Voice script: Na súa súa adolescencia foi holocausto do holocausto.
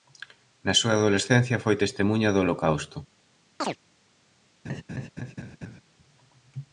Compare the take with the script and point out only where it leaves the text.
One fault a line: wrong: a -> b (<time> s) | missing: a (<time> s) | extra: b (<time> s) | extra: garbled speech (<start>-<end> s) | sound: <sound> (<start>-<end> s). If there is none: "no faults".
missing: súa (0.9 s)
wrong: holocausto -> testemuña (1.8 s)
sound: chirp (3.6-3.8 s)
sound: laugh (4.6-5.8 s)